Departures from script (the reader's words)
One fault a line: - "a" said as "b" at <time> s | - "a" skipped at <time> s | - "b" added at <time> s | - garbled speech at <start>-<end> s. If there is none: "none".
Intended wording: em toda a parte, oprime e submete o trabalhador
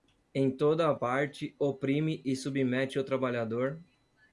none